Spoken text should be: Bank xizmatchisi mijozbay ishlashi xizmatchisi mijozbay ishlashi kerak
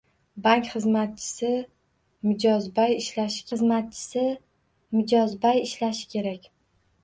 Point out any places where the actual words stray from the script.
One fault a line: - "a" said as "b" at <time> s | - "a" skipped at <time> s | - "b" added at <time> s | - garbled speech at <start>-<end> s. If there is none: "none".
none